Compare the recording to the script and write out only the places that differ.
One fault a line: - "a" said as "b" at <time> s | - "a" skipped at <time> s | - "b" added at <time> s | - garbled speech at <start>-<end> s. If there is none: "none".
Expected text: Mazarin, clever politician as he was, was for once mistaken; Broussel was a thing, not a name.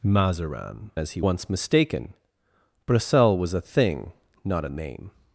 - "clever politician" skipped at 0.9 s
- "was was for" skipped at 1.2 s